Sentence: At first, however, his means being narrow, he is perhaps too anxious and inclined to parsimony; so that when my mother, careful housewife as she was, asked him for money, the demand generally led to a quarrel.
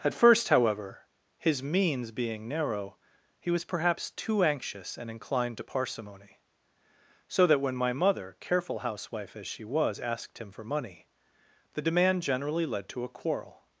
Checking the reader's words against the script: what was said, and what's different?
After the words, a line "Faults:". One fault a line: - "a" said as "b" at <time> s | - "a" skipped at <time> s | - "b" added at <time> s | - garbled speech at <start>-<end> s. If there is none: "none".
At first, however, his means being narrow, he was perhaps too anxious and inclined to parsimony; so that when my mother, careful housewife as she was, asked him for money, the demand generally led to a quarrel.
Faults:
- "is" said as "was" at 3.5 s